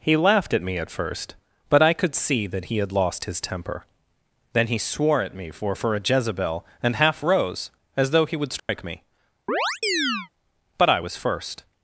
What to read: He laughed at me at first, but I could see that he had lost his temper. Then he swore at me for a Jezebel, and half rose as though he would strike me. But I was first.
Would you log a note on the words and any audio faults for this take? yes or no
yes